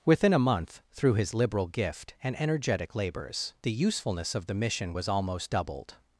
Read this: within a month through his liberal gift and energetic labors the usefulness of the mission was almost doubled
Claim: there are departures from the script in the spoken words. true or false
false